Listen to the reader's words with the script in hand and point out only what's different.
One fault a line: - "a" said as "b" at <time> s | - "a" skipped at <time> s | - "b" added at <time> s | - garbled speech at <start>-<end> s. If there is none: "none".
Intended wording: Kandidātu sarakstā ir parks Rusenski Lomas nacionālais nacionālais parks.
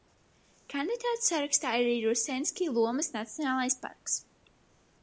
- "parks" said as "arī" at 1.9 s
- "nacionālais" skipped at 3.8 s